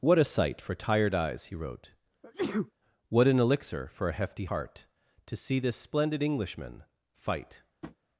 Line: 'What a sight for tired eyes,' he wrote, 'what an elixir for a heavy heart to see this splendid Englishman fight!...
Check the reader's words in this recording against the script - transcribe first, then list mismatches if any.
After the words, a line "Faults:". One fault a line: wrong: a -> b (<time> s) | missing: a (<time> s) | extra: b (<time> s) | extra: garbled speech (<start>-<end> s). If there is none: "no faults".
'What a sight for tired eyes,' he wrote, 'what an elixir for a hefty heart to see this splendid Englishman fight!...
Faults:
wrong: heavy -> hefty (4.1 s)